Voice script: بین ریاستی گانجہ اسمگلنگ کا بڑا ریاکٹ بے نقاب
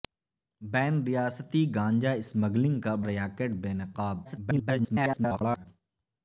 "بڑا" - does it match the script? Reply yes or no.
no